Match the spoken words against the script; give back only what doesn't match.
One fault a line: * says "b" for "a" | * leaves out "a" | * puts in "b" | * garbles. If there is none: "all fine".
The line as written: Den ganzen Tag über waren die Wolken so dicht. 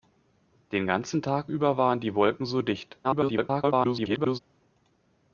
* garbles